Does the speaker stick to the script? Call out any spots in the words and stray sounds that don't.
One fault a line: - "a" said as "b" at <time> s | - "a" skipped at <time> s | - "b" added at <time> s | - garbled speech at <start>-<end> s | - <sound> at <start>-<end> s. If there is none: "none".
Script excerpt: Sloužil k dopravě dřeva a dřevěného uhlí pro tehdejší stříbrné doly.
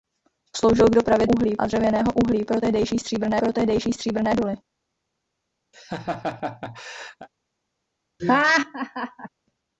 - "dřeva" said as "uhlí" at 1.2 s
- "pro tehdejší stříbrné" added at 3.4 s
- laugh at 5.7-7.3 s
- laugh at 8.2-9.3 s